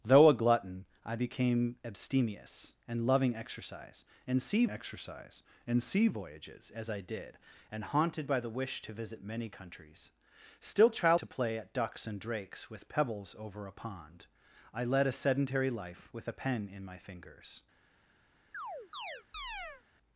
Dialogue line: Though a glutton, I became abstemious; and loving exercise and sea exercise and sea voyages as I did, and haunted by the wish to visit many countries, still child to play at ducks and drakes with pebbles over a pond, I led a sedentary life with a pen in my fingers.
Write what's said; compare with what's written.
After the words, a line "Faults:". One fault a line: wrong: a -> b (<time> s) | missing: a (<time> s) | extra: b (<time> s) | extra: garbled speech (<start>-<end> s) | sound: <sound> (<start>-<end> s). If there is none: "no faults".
Though a glutton, I became abstemious; and loving exercise and sea exercise and sea voyages as I did, and haunted by the wish to visit many countries, still child to play at ducks and drakes with pebbles over a pond, I led a sedentary life with a pen in my fingers.
Faults:
sound: chirp (18.5-19.8 s)